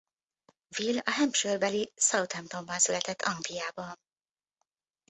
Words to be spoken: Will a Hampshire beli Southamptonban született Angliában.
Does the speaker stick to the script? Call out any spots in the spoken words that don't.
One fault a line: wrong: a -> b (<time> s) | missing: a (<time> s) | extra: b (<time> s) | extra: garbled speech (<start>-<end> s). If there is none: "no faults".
no faults